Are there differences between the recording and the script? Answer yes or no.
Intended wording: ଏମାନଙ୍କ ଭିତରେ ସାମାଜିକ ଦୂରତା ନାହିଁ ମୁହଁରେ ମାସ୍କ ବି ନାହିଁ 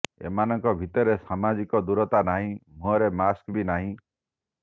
no